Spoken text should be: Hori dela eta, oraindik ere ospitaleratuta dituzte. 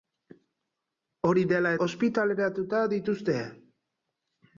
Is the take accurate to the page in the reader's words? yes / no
no